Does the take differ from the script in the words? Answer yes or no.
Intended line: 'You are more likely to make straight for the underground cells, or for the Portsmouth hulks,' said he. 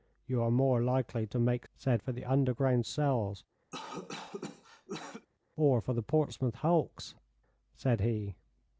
yes